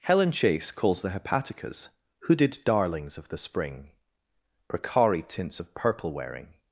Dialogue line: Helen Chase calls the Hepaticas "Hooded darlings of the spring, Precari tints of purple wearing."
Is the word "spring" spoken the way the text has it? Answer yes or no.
yes